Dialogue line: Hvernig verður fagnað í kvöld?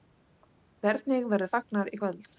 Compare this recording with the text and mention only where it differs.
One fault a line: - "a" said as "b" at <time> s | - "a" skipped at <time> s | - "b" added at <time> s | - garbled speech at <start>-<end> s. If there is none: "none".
none